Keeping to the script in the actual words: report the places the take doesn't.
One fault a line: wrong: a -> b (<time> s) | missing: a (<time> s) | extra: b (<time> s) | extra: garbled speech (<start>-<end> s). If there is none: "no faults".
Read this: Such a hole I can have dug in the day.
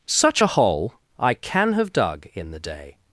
no faults